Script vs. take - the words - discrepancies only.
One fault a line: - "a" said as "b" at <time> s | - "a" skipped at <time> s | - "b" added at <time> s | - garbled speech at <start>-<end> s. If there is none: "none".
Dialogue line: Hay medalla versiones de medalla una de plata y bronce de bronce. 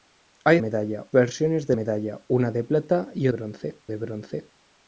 none